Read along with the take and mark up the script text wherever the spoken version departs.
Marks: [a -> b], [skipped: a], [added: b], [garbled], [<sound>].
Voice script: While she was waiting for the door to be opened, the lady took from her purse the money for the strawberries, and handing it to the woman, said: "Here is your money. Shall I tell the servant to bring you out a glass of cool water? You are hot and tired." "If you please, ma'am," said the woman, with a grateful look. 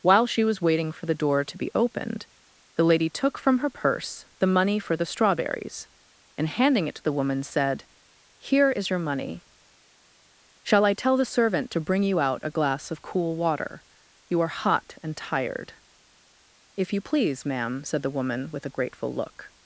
While she was waiting for the door to be opened, the lady took from her purse the money for the strawberries, and handing it to the woman, said: "Here is your money. Shall I tell the servant to bring you out a glass of cool water? You are hot and tired." "If you please, ma'am," said the woman, with a grateful look.